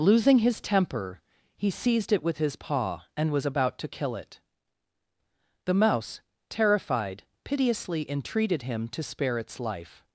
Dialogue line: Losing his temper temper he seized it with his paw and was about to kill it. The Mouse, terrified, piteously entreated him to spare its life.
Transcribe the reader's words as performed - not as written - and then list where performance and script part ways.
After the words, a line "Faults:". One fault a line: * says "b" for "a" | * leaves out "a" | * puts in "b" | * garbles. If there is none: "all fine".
Losing his temper he seized it with his paw and was about to kill it. The Mouse, terrified, piteously entreated him to spare its life.
Faults:
* leaves out "temper"